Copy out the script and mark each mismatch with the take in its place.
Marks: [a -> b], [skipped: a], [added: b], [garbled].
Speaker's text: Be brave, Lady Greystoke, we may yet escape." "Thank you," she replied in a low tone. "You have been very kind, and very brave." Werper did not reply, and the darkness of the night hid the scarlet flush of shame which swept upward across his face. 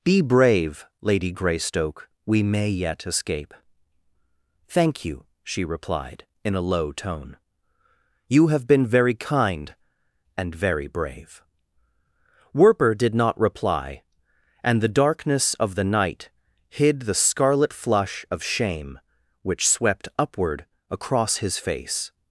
Be brave, Lady Greystoke, we may yet escape." "Thank you," she replied in a low tone. "You have been very kind, and very brave." Werper did not reply, and the darkness of the night hid the scarlet flush of shame which swept upward across his face.